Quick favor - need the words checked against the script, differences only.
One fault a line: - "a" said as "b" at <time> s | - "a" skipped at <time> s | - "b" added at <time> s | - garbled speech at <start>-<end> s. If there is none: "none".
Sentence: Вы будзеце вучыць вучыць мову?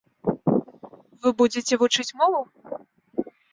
- "вучыць" skipped at 2.1 s